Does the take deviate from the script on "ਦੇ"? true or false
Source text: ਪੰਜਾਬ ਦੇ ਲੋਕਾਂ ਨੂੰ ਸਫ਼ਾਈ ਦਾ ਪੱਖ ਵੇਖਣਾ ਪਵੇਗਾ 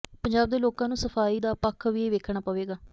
false